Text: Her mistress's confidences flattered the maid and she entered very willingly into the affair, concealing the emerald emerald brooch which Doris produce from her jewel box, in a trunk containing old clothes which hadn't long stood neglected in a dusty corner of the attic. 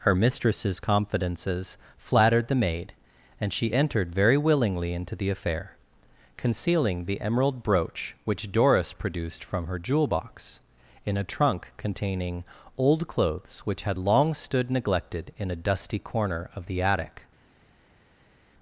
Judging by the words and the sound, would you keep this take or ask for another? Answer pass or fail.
fail